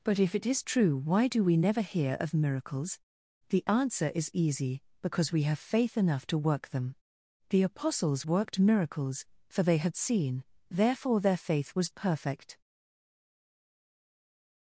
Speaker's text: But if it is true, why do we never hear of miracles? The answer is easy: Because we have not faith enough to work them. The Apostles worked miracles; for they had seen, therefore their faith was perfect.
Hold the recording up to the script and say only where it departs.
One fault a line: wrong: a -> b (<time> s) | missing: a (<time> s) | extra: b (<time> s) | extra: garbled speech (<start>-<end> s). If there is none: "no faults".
missing: not (5.6 s)